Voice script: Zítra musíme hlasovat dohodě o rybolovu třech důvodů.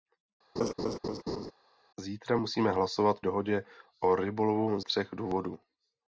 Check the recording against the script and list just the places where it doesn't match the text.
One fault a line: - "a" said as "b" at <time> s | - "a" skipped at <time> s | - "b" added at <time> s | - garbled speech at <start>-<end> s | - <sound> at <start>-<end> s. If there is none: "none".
- laugh at 0.6-1.5 s